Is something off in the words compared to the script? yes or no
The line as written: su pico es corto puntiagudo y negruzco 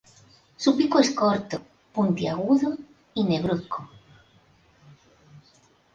no